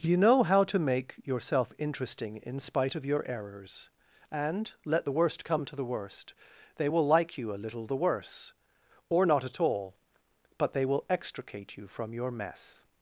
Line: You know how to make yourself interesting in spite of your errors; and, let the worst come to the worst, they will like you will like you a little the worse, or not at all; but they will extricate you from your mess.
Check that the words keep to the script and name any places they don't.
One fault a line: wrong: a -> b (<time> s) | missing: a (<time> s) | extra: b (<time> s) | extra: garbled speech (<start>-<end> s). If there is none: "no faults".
missing: will like you (7.5 s)